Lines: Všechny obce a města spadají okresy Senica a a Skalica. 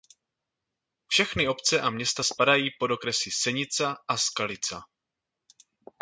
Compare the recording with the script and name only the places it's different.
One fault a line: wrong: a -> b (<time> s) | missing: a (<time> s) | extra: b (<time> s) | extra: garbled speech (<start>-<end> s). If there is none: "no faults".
extra: pod (2.8 s)
missing: a (4.2 s)